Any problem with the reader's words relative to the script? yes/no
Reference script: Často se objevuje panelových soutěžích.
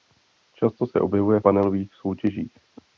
no